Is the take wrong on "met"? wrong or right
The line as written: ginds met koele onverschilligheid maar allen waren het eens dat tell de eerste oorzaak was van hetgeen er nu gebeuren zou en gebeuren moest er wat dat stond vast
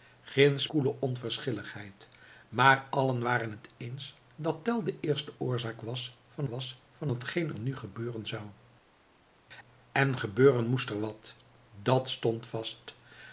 wrong